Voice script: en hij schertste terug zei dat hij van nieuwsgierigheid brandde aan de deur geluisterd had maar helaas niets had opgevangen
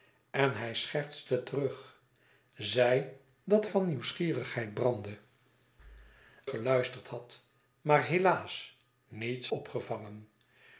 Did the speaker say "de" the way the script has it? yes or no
no